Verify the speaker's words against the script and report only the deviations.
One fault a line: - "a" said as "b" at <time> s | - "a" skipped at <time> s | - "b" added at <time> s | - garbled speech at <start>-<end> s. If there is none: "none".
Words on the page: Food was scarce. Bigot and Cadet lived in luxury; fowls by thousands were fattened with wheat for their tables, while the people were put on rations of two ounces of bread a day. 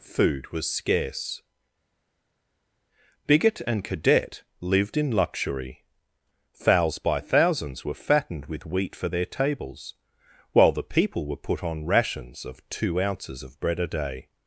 none